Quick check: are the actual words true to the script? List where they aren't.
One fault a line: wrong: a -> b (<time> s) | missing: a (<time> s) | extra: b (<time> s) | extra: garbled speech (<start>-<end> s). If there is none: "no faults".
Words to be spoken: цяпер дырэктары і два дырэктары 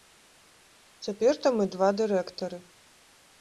wrong: дырэктары -> там (1.4 s)